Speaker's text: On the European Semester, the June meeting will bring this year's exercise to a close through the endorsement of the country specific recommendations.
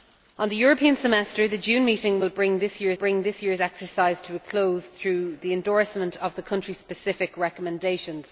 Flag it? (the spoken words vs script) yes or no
yes